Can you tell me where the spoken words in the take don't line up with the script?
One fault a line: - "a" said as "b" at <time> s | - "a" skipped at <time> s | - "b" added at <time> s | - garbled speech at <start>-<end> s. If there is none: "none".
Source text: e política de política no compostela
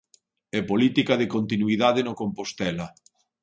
- "política" said as "continuidade" at 1.4 s